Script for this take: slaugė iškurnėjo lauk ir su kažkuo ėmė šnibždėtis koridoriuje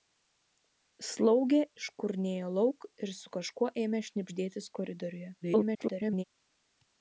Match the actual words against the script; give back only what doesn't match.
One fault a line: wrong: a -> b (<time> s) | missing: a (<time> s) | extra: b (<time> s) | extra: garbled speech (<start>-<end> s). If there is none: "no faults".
extra: garbled speech (5.4-6.2 s)